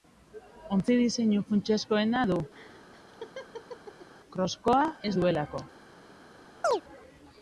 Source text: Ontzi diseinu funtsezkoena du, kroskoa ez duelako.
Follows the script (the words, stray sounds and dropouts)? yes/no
no